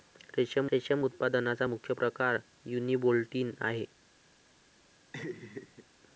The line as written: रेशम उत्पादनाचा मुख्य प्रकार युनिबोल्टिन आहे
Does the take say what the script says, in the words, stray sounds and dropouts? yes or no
no